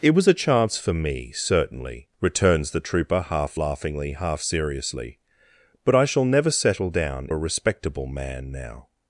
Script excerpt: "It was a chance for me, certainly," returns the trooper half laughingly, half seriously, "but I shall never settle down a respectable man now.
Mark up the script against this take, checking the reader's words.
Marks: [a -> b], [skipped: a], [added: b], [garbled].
"It was a chance for me, certainly," returns the trooper half laughingly, half seriously, "but I shall never settle down a respectable man now.